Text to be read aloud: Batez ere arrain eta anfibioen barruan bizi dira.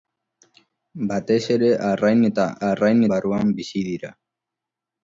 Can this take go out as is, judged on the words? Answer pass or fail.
fail